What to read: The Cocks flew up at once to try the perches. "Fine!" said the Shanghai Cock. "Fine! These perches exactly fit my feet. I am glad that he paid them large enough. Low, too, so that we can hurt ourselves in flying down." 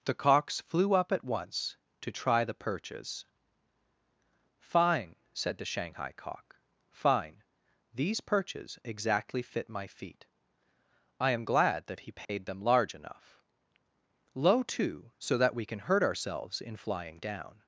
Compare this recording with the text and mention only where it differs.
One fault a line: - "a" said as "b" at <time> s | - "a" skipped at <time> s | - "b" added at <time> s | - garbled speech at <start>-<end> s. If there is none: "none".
none